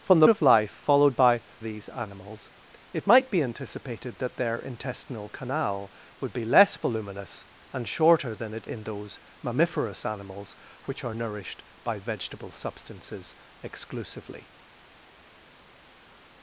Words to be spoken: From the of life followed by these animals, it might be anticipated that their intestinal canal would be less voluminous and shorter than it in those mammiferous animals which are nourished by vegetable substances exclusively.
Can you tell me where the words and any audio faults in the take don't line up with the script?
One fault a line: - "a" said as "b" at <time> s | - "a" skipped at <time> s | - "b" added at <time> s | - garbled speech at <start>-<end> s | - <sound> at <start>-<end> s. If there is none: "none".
none